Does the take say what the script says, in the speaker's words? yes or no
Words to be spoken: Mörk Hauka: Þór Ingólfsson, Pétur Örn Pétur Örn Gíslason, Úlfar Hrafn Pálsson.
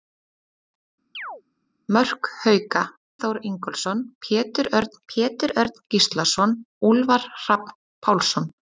yes